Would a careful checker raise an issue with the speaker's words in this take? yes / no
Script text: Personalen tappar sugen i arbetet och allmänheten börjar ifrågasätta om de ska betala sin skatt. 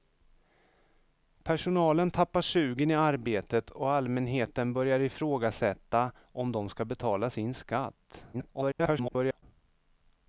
yes